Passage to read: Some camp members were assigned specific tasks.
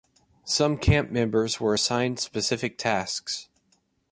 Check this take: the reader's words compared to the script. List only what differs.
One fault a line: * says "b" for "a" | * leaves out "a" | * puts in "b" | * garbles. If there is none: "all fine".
all fine